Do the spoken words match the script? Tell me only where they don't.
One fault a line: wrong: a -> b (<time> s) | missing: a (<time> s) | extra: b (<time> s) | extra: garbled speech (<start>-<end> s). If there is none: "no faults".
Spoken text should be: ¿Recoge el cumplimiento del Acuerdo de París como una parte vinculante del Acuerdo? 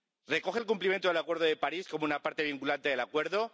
no faults